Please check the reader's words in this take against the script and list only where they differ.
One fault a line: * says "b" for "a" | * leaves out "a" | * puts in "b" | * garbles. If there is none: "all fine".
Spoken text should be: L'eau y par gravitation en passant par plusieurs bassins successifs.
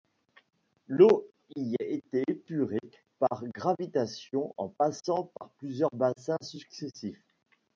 * puts in "était épurée"